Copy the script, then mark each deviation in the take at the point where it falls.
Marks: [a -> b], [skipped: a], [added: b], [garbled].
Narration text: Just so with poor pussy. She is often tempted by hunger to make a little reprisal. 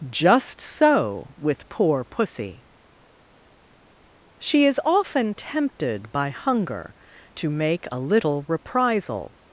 Just so with poor pussy. She is often tempted by hunger to make a little reprisal.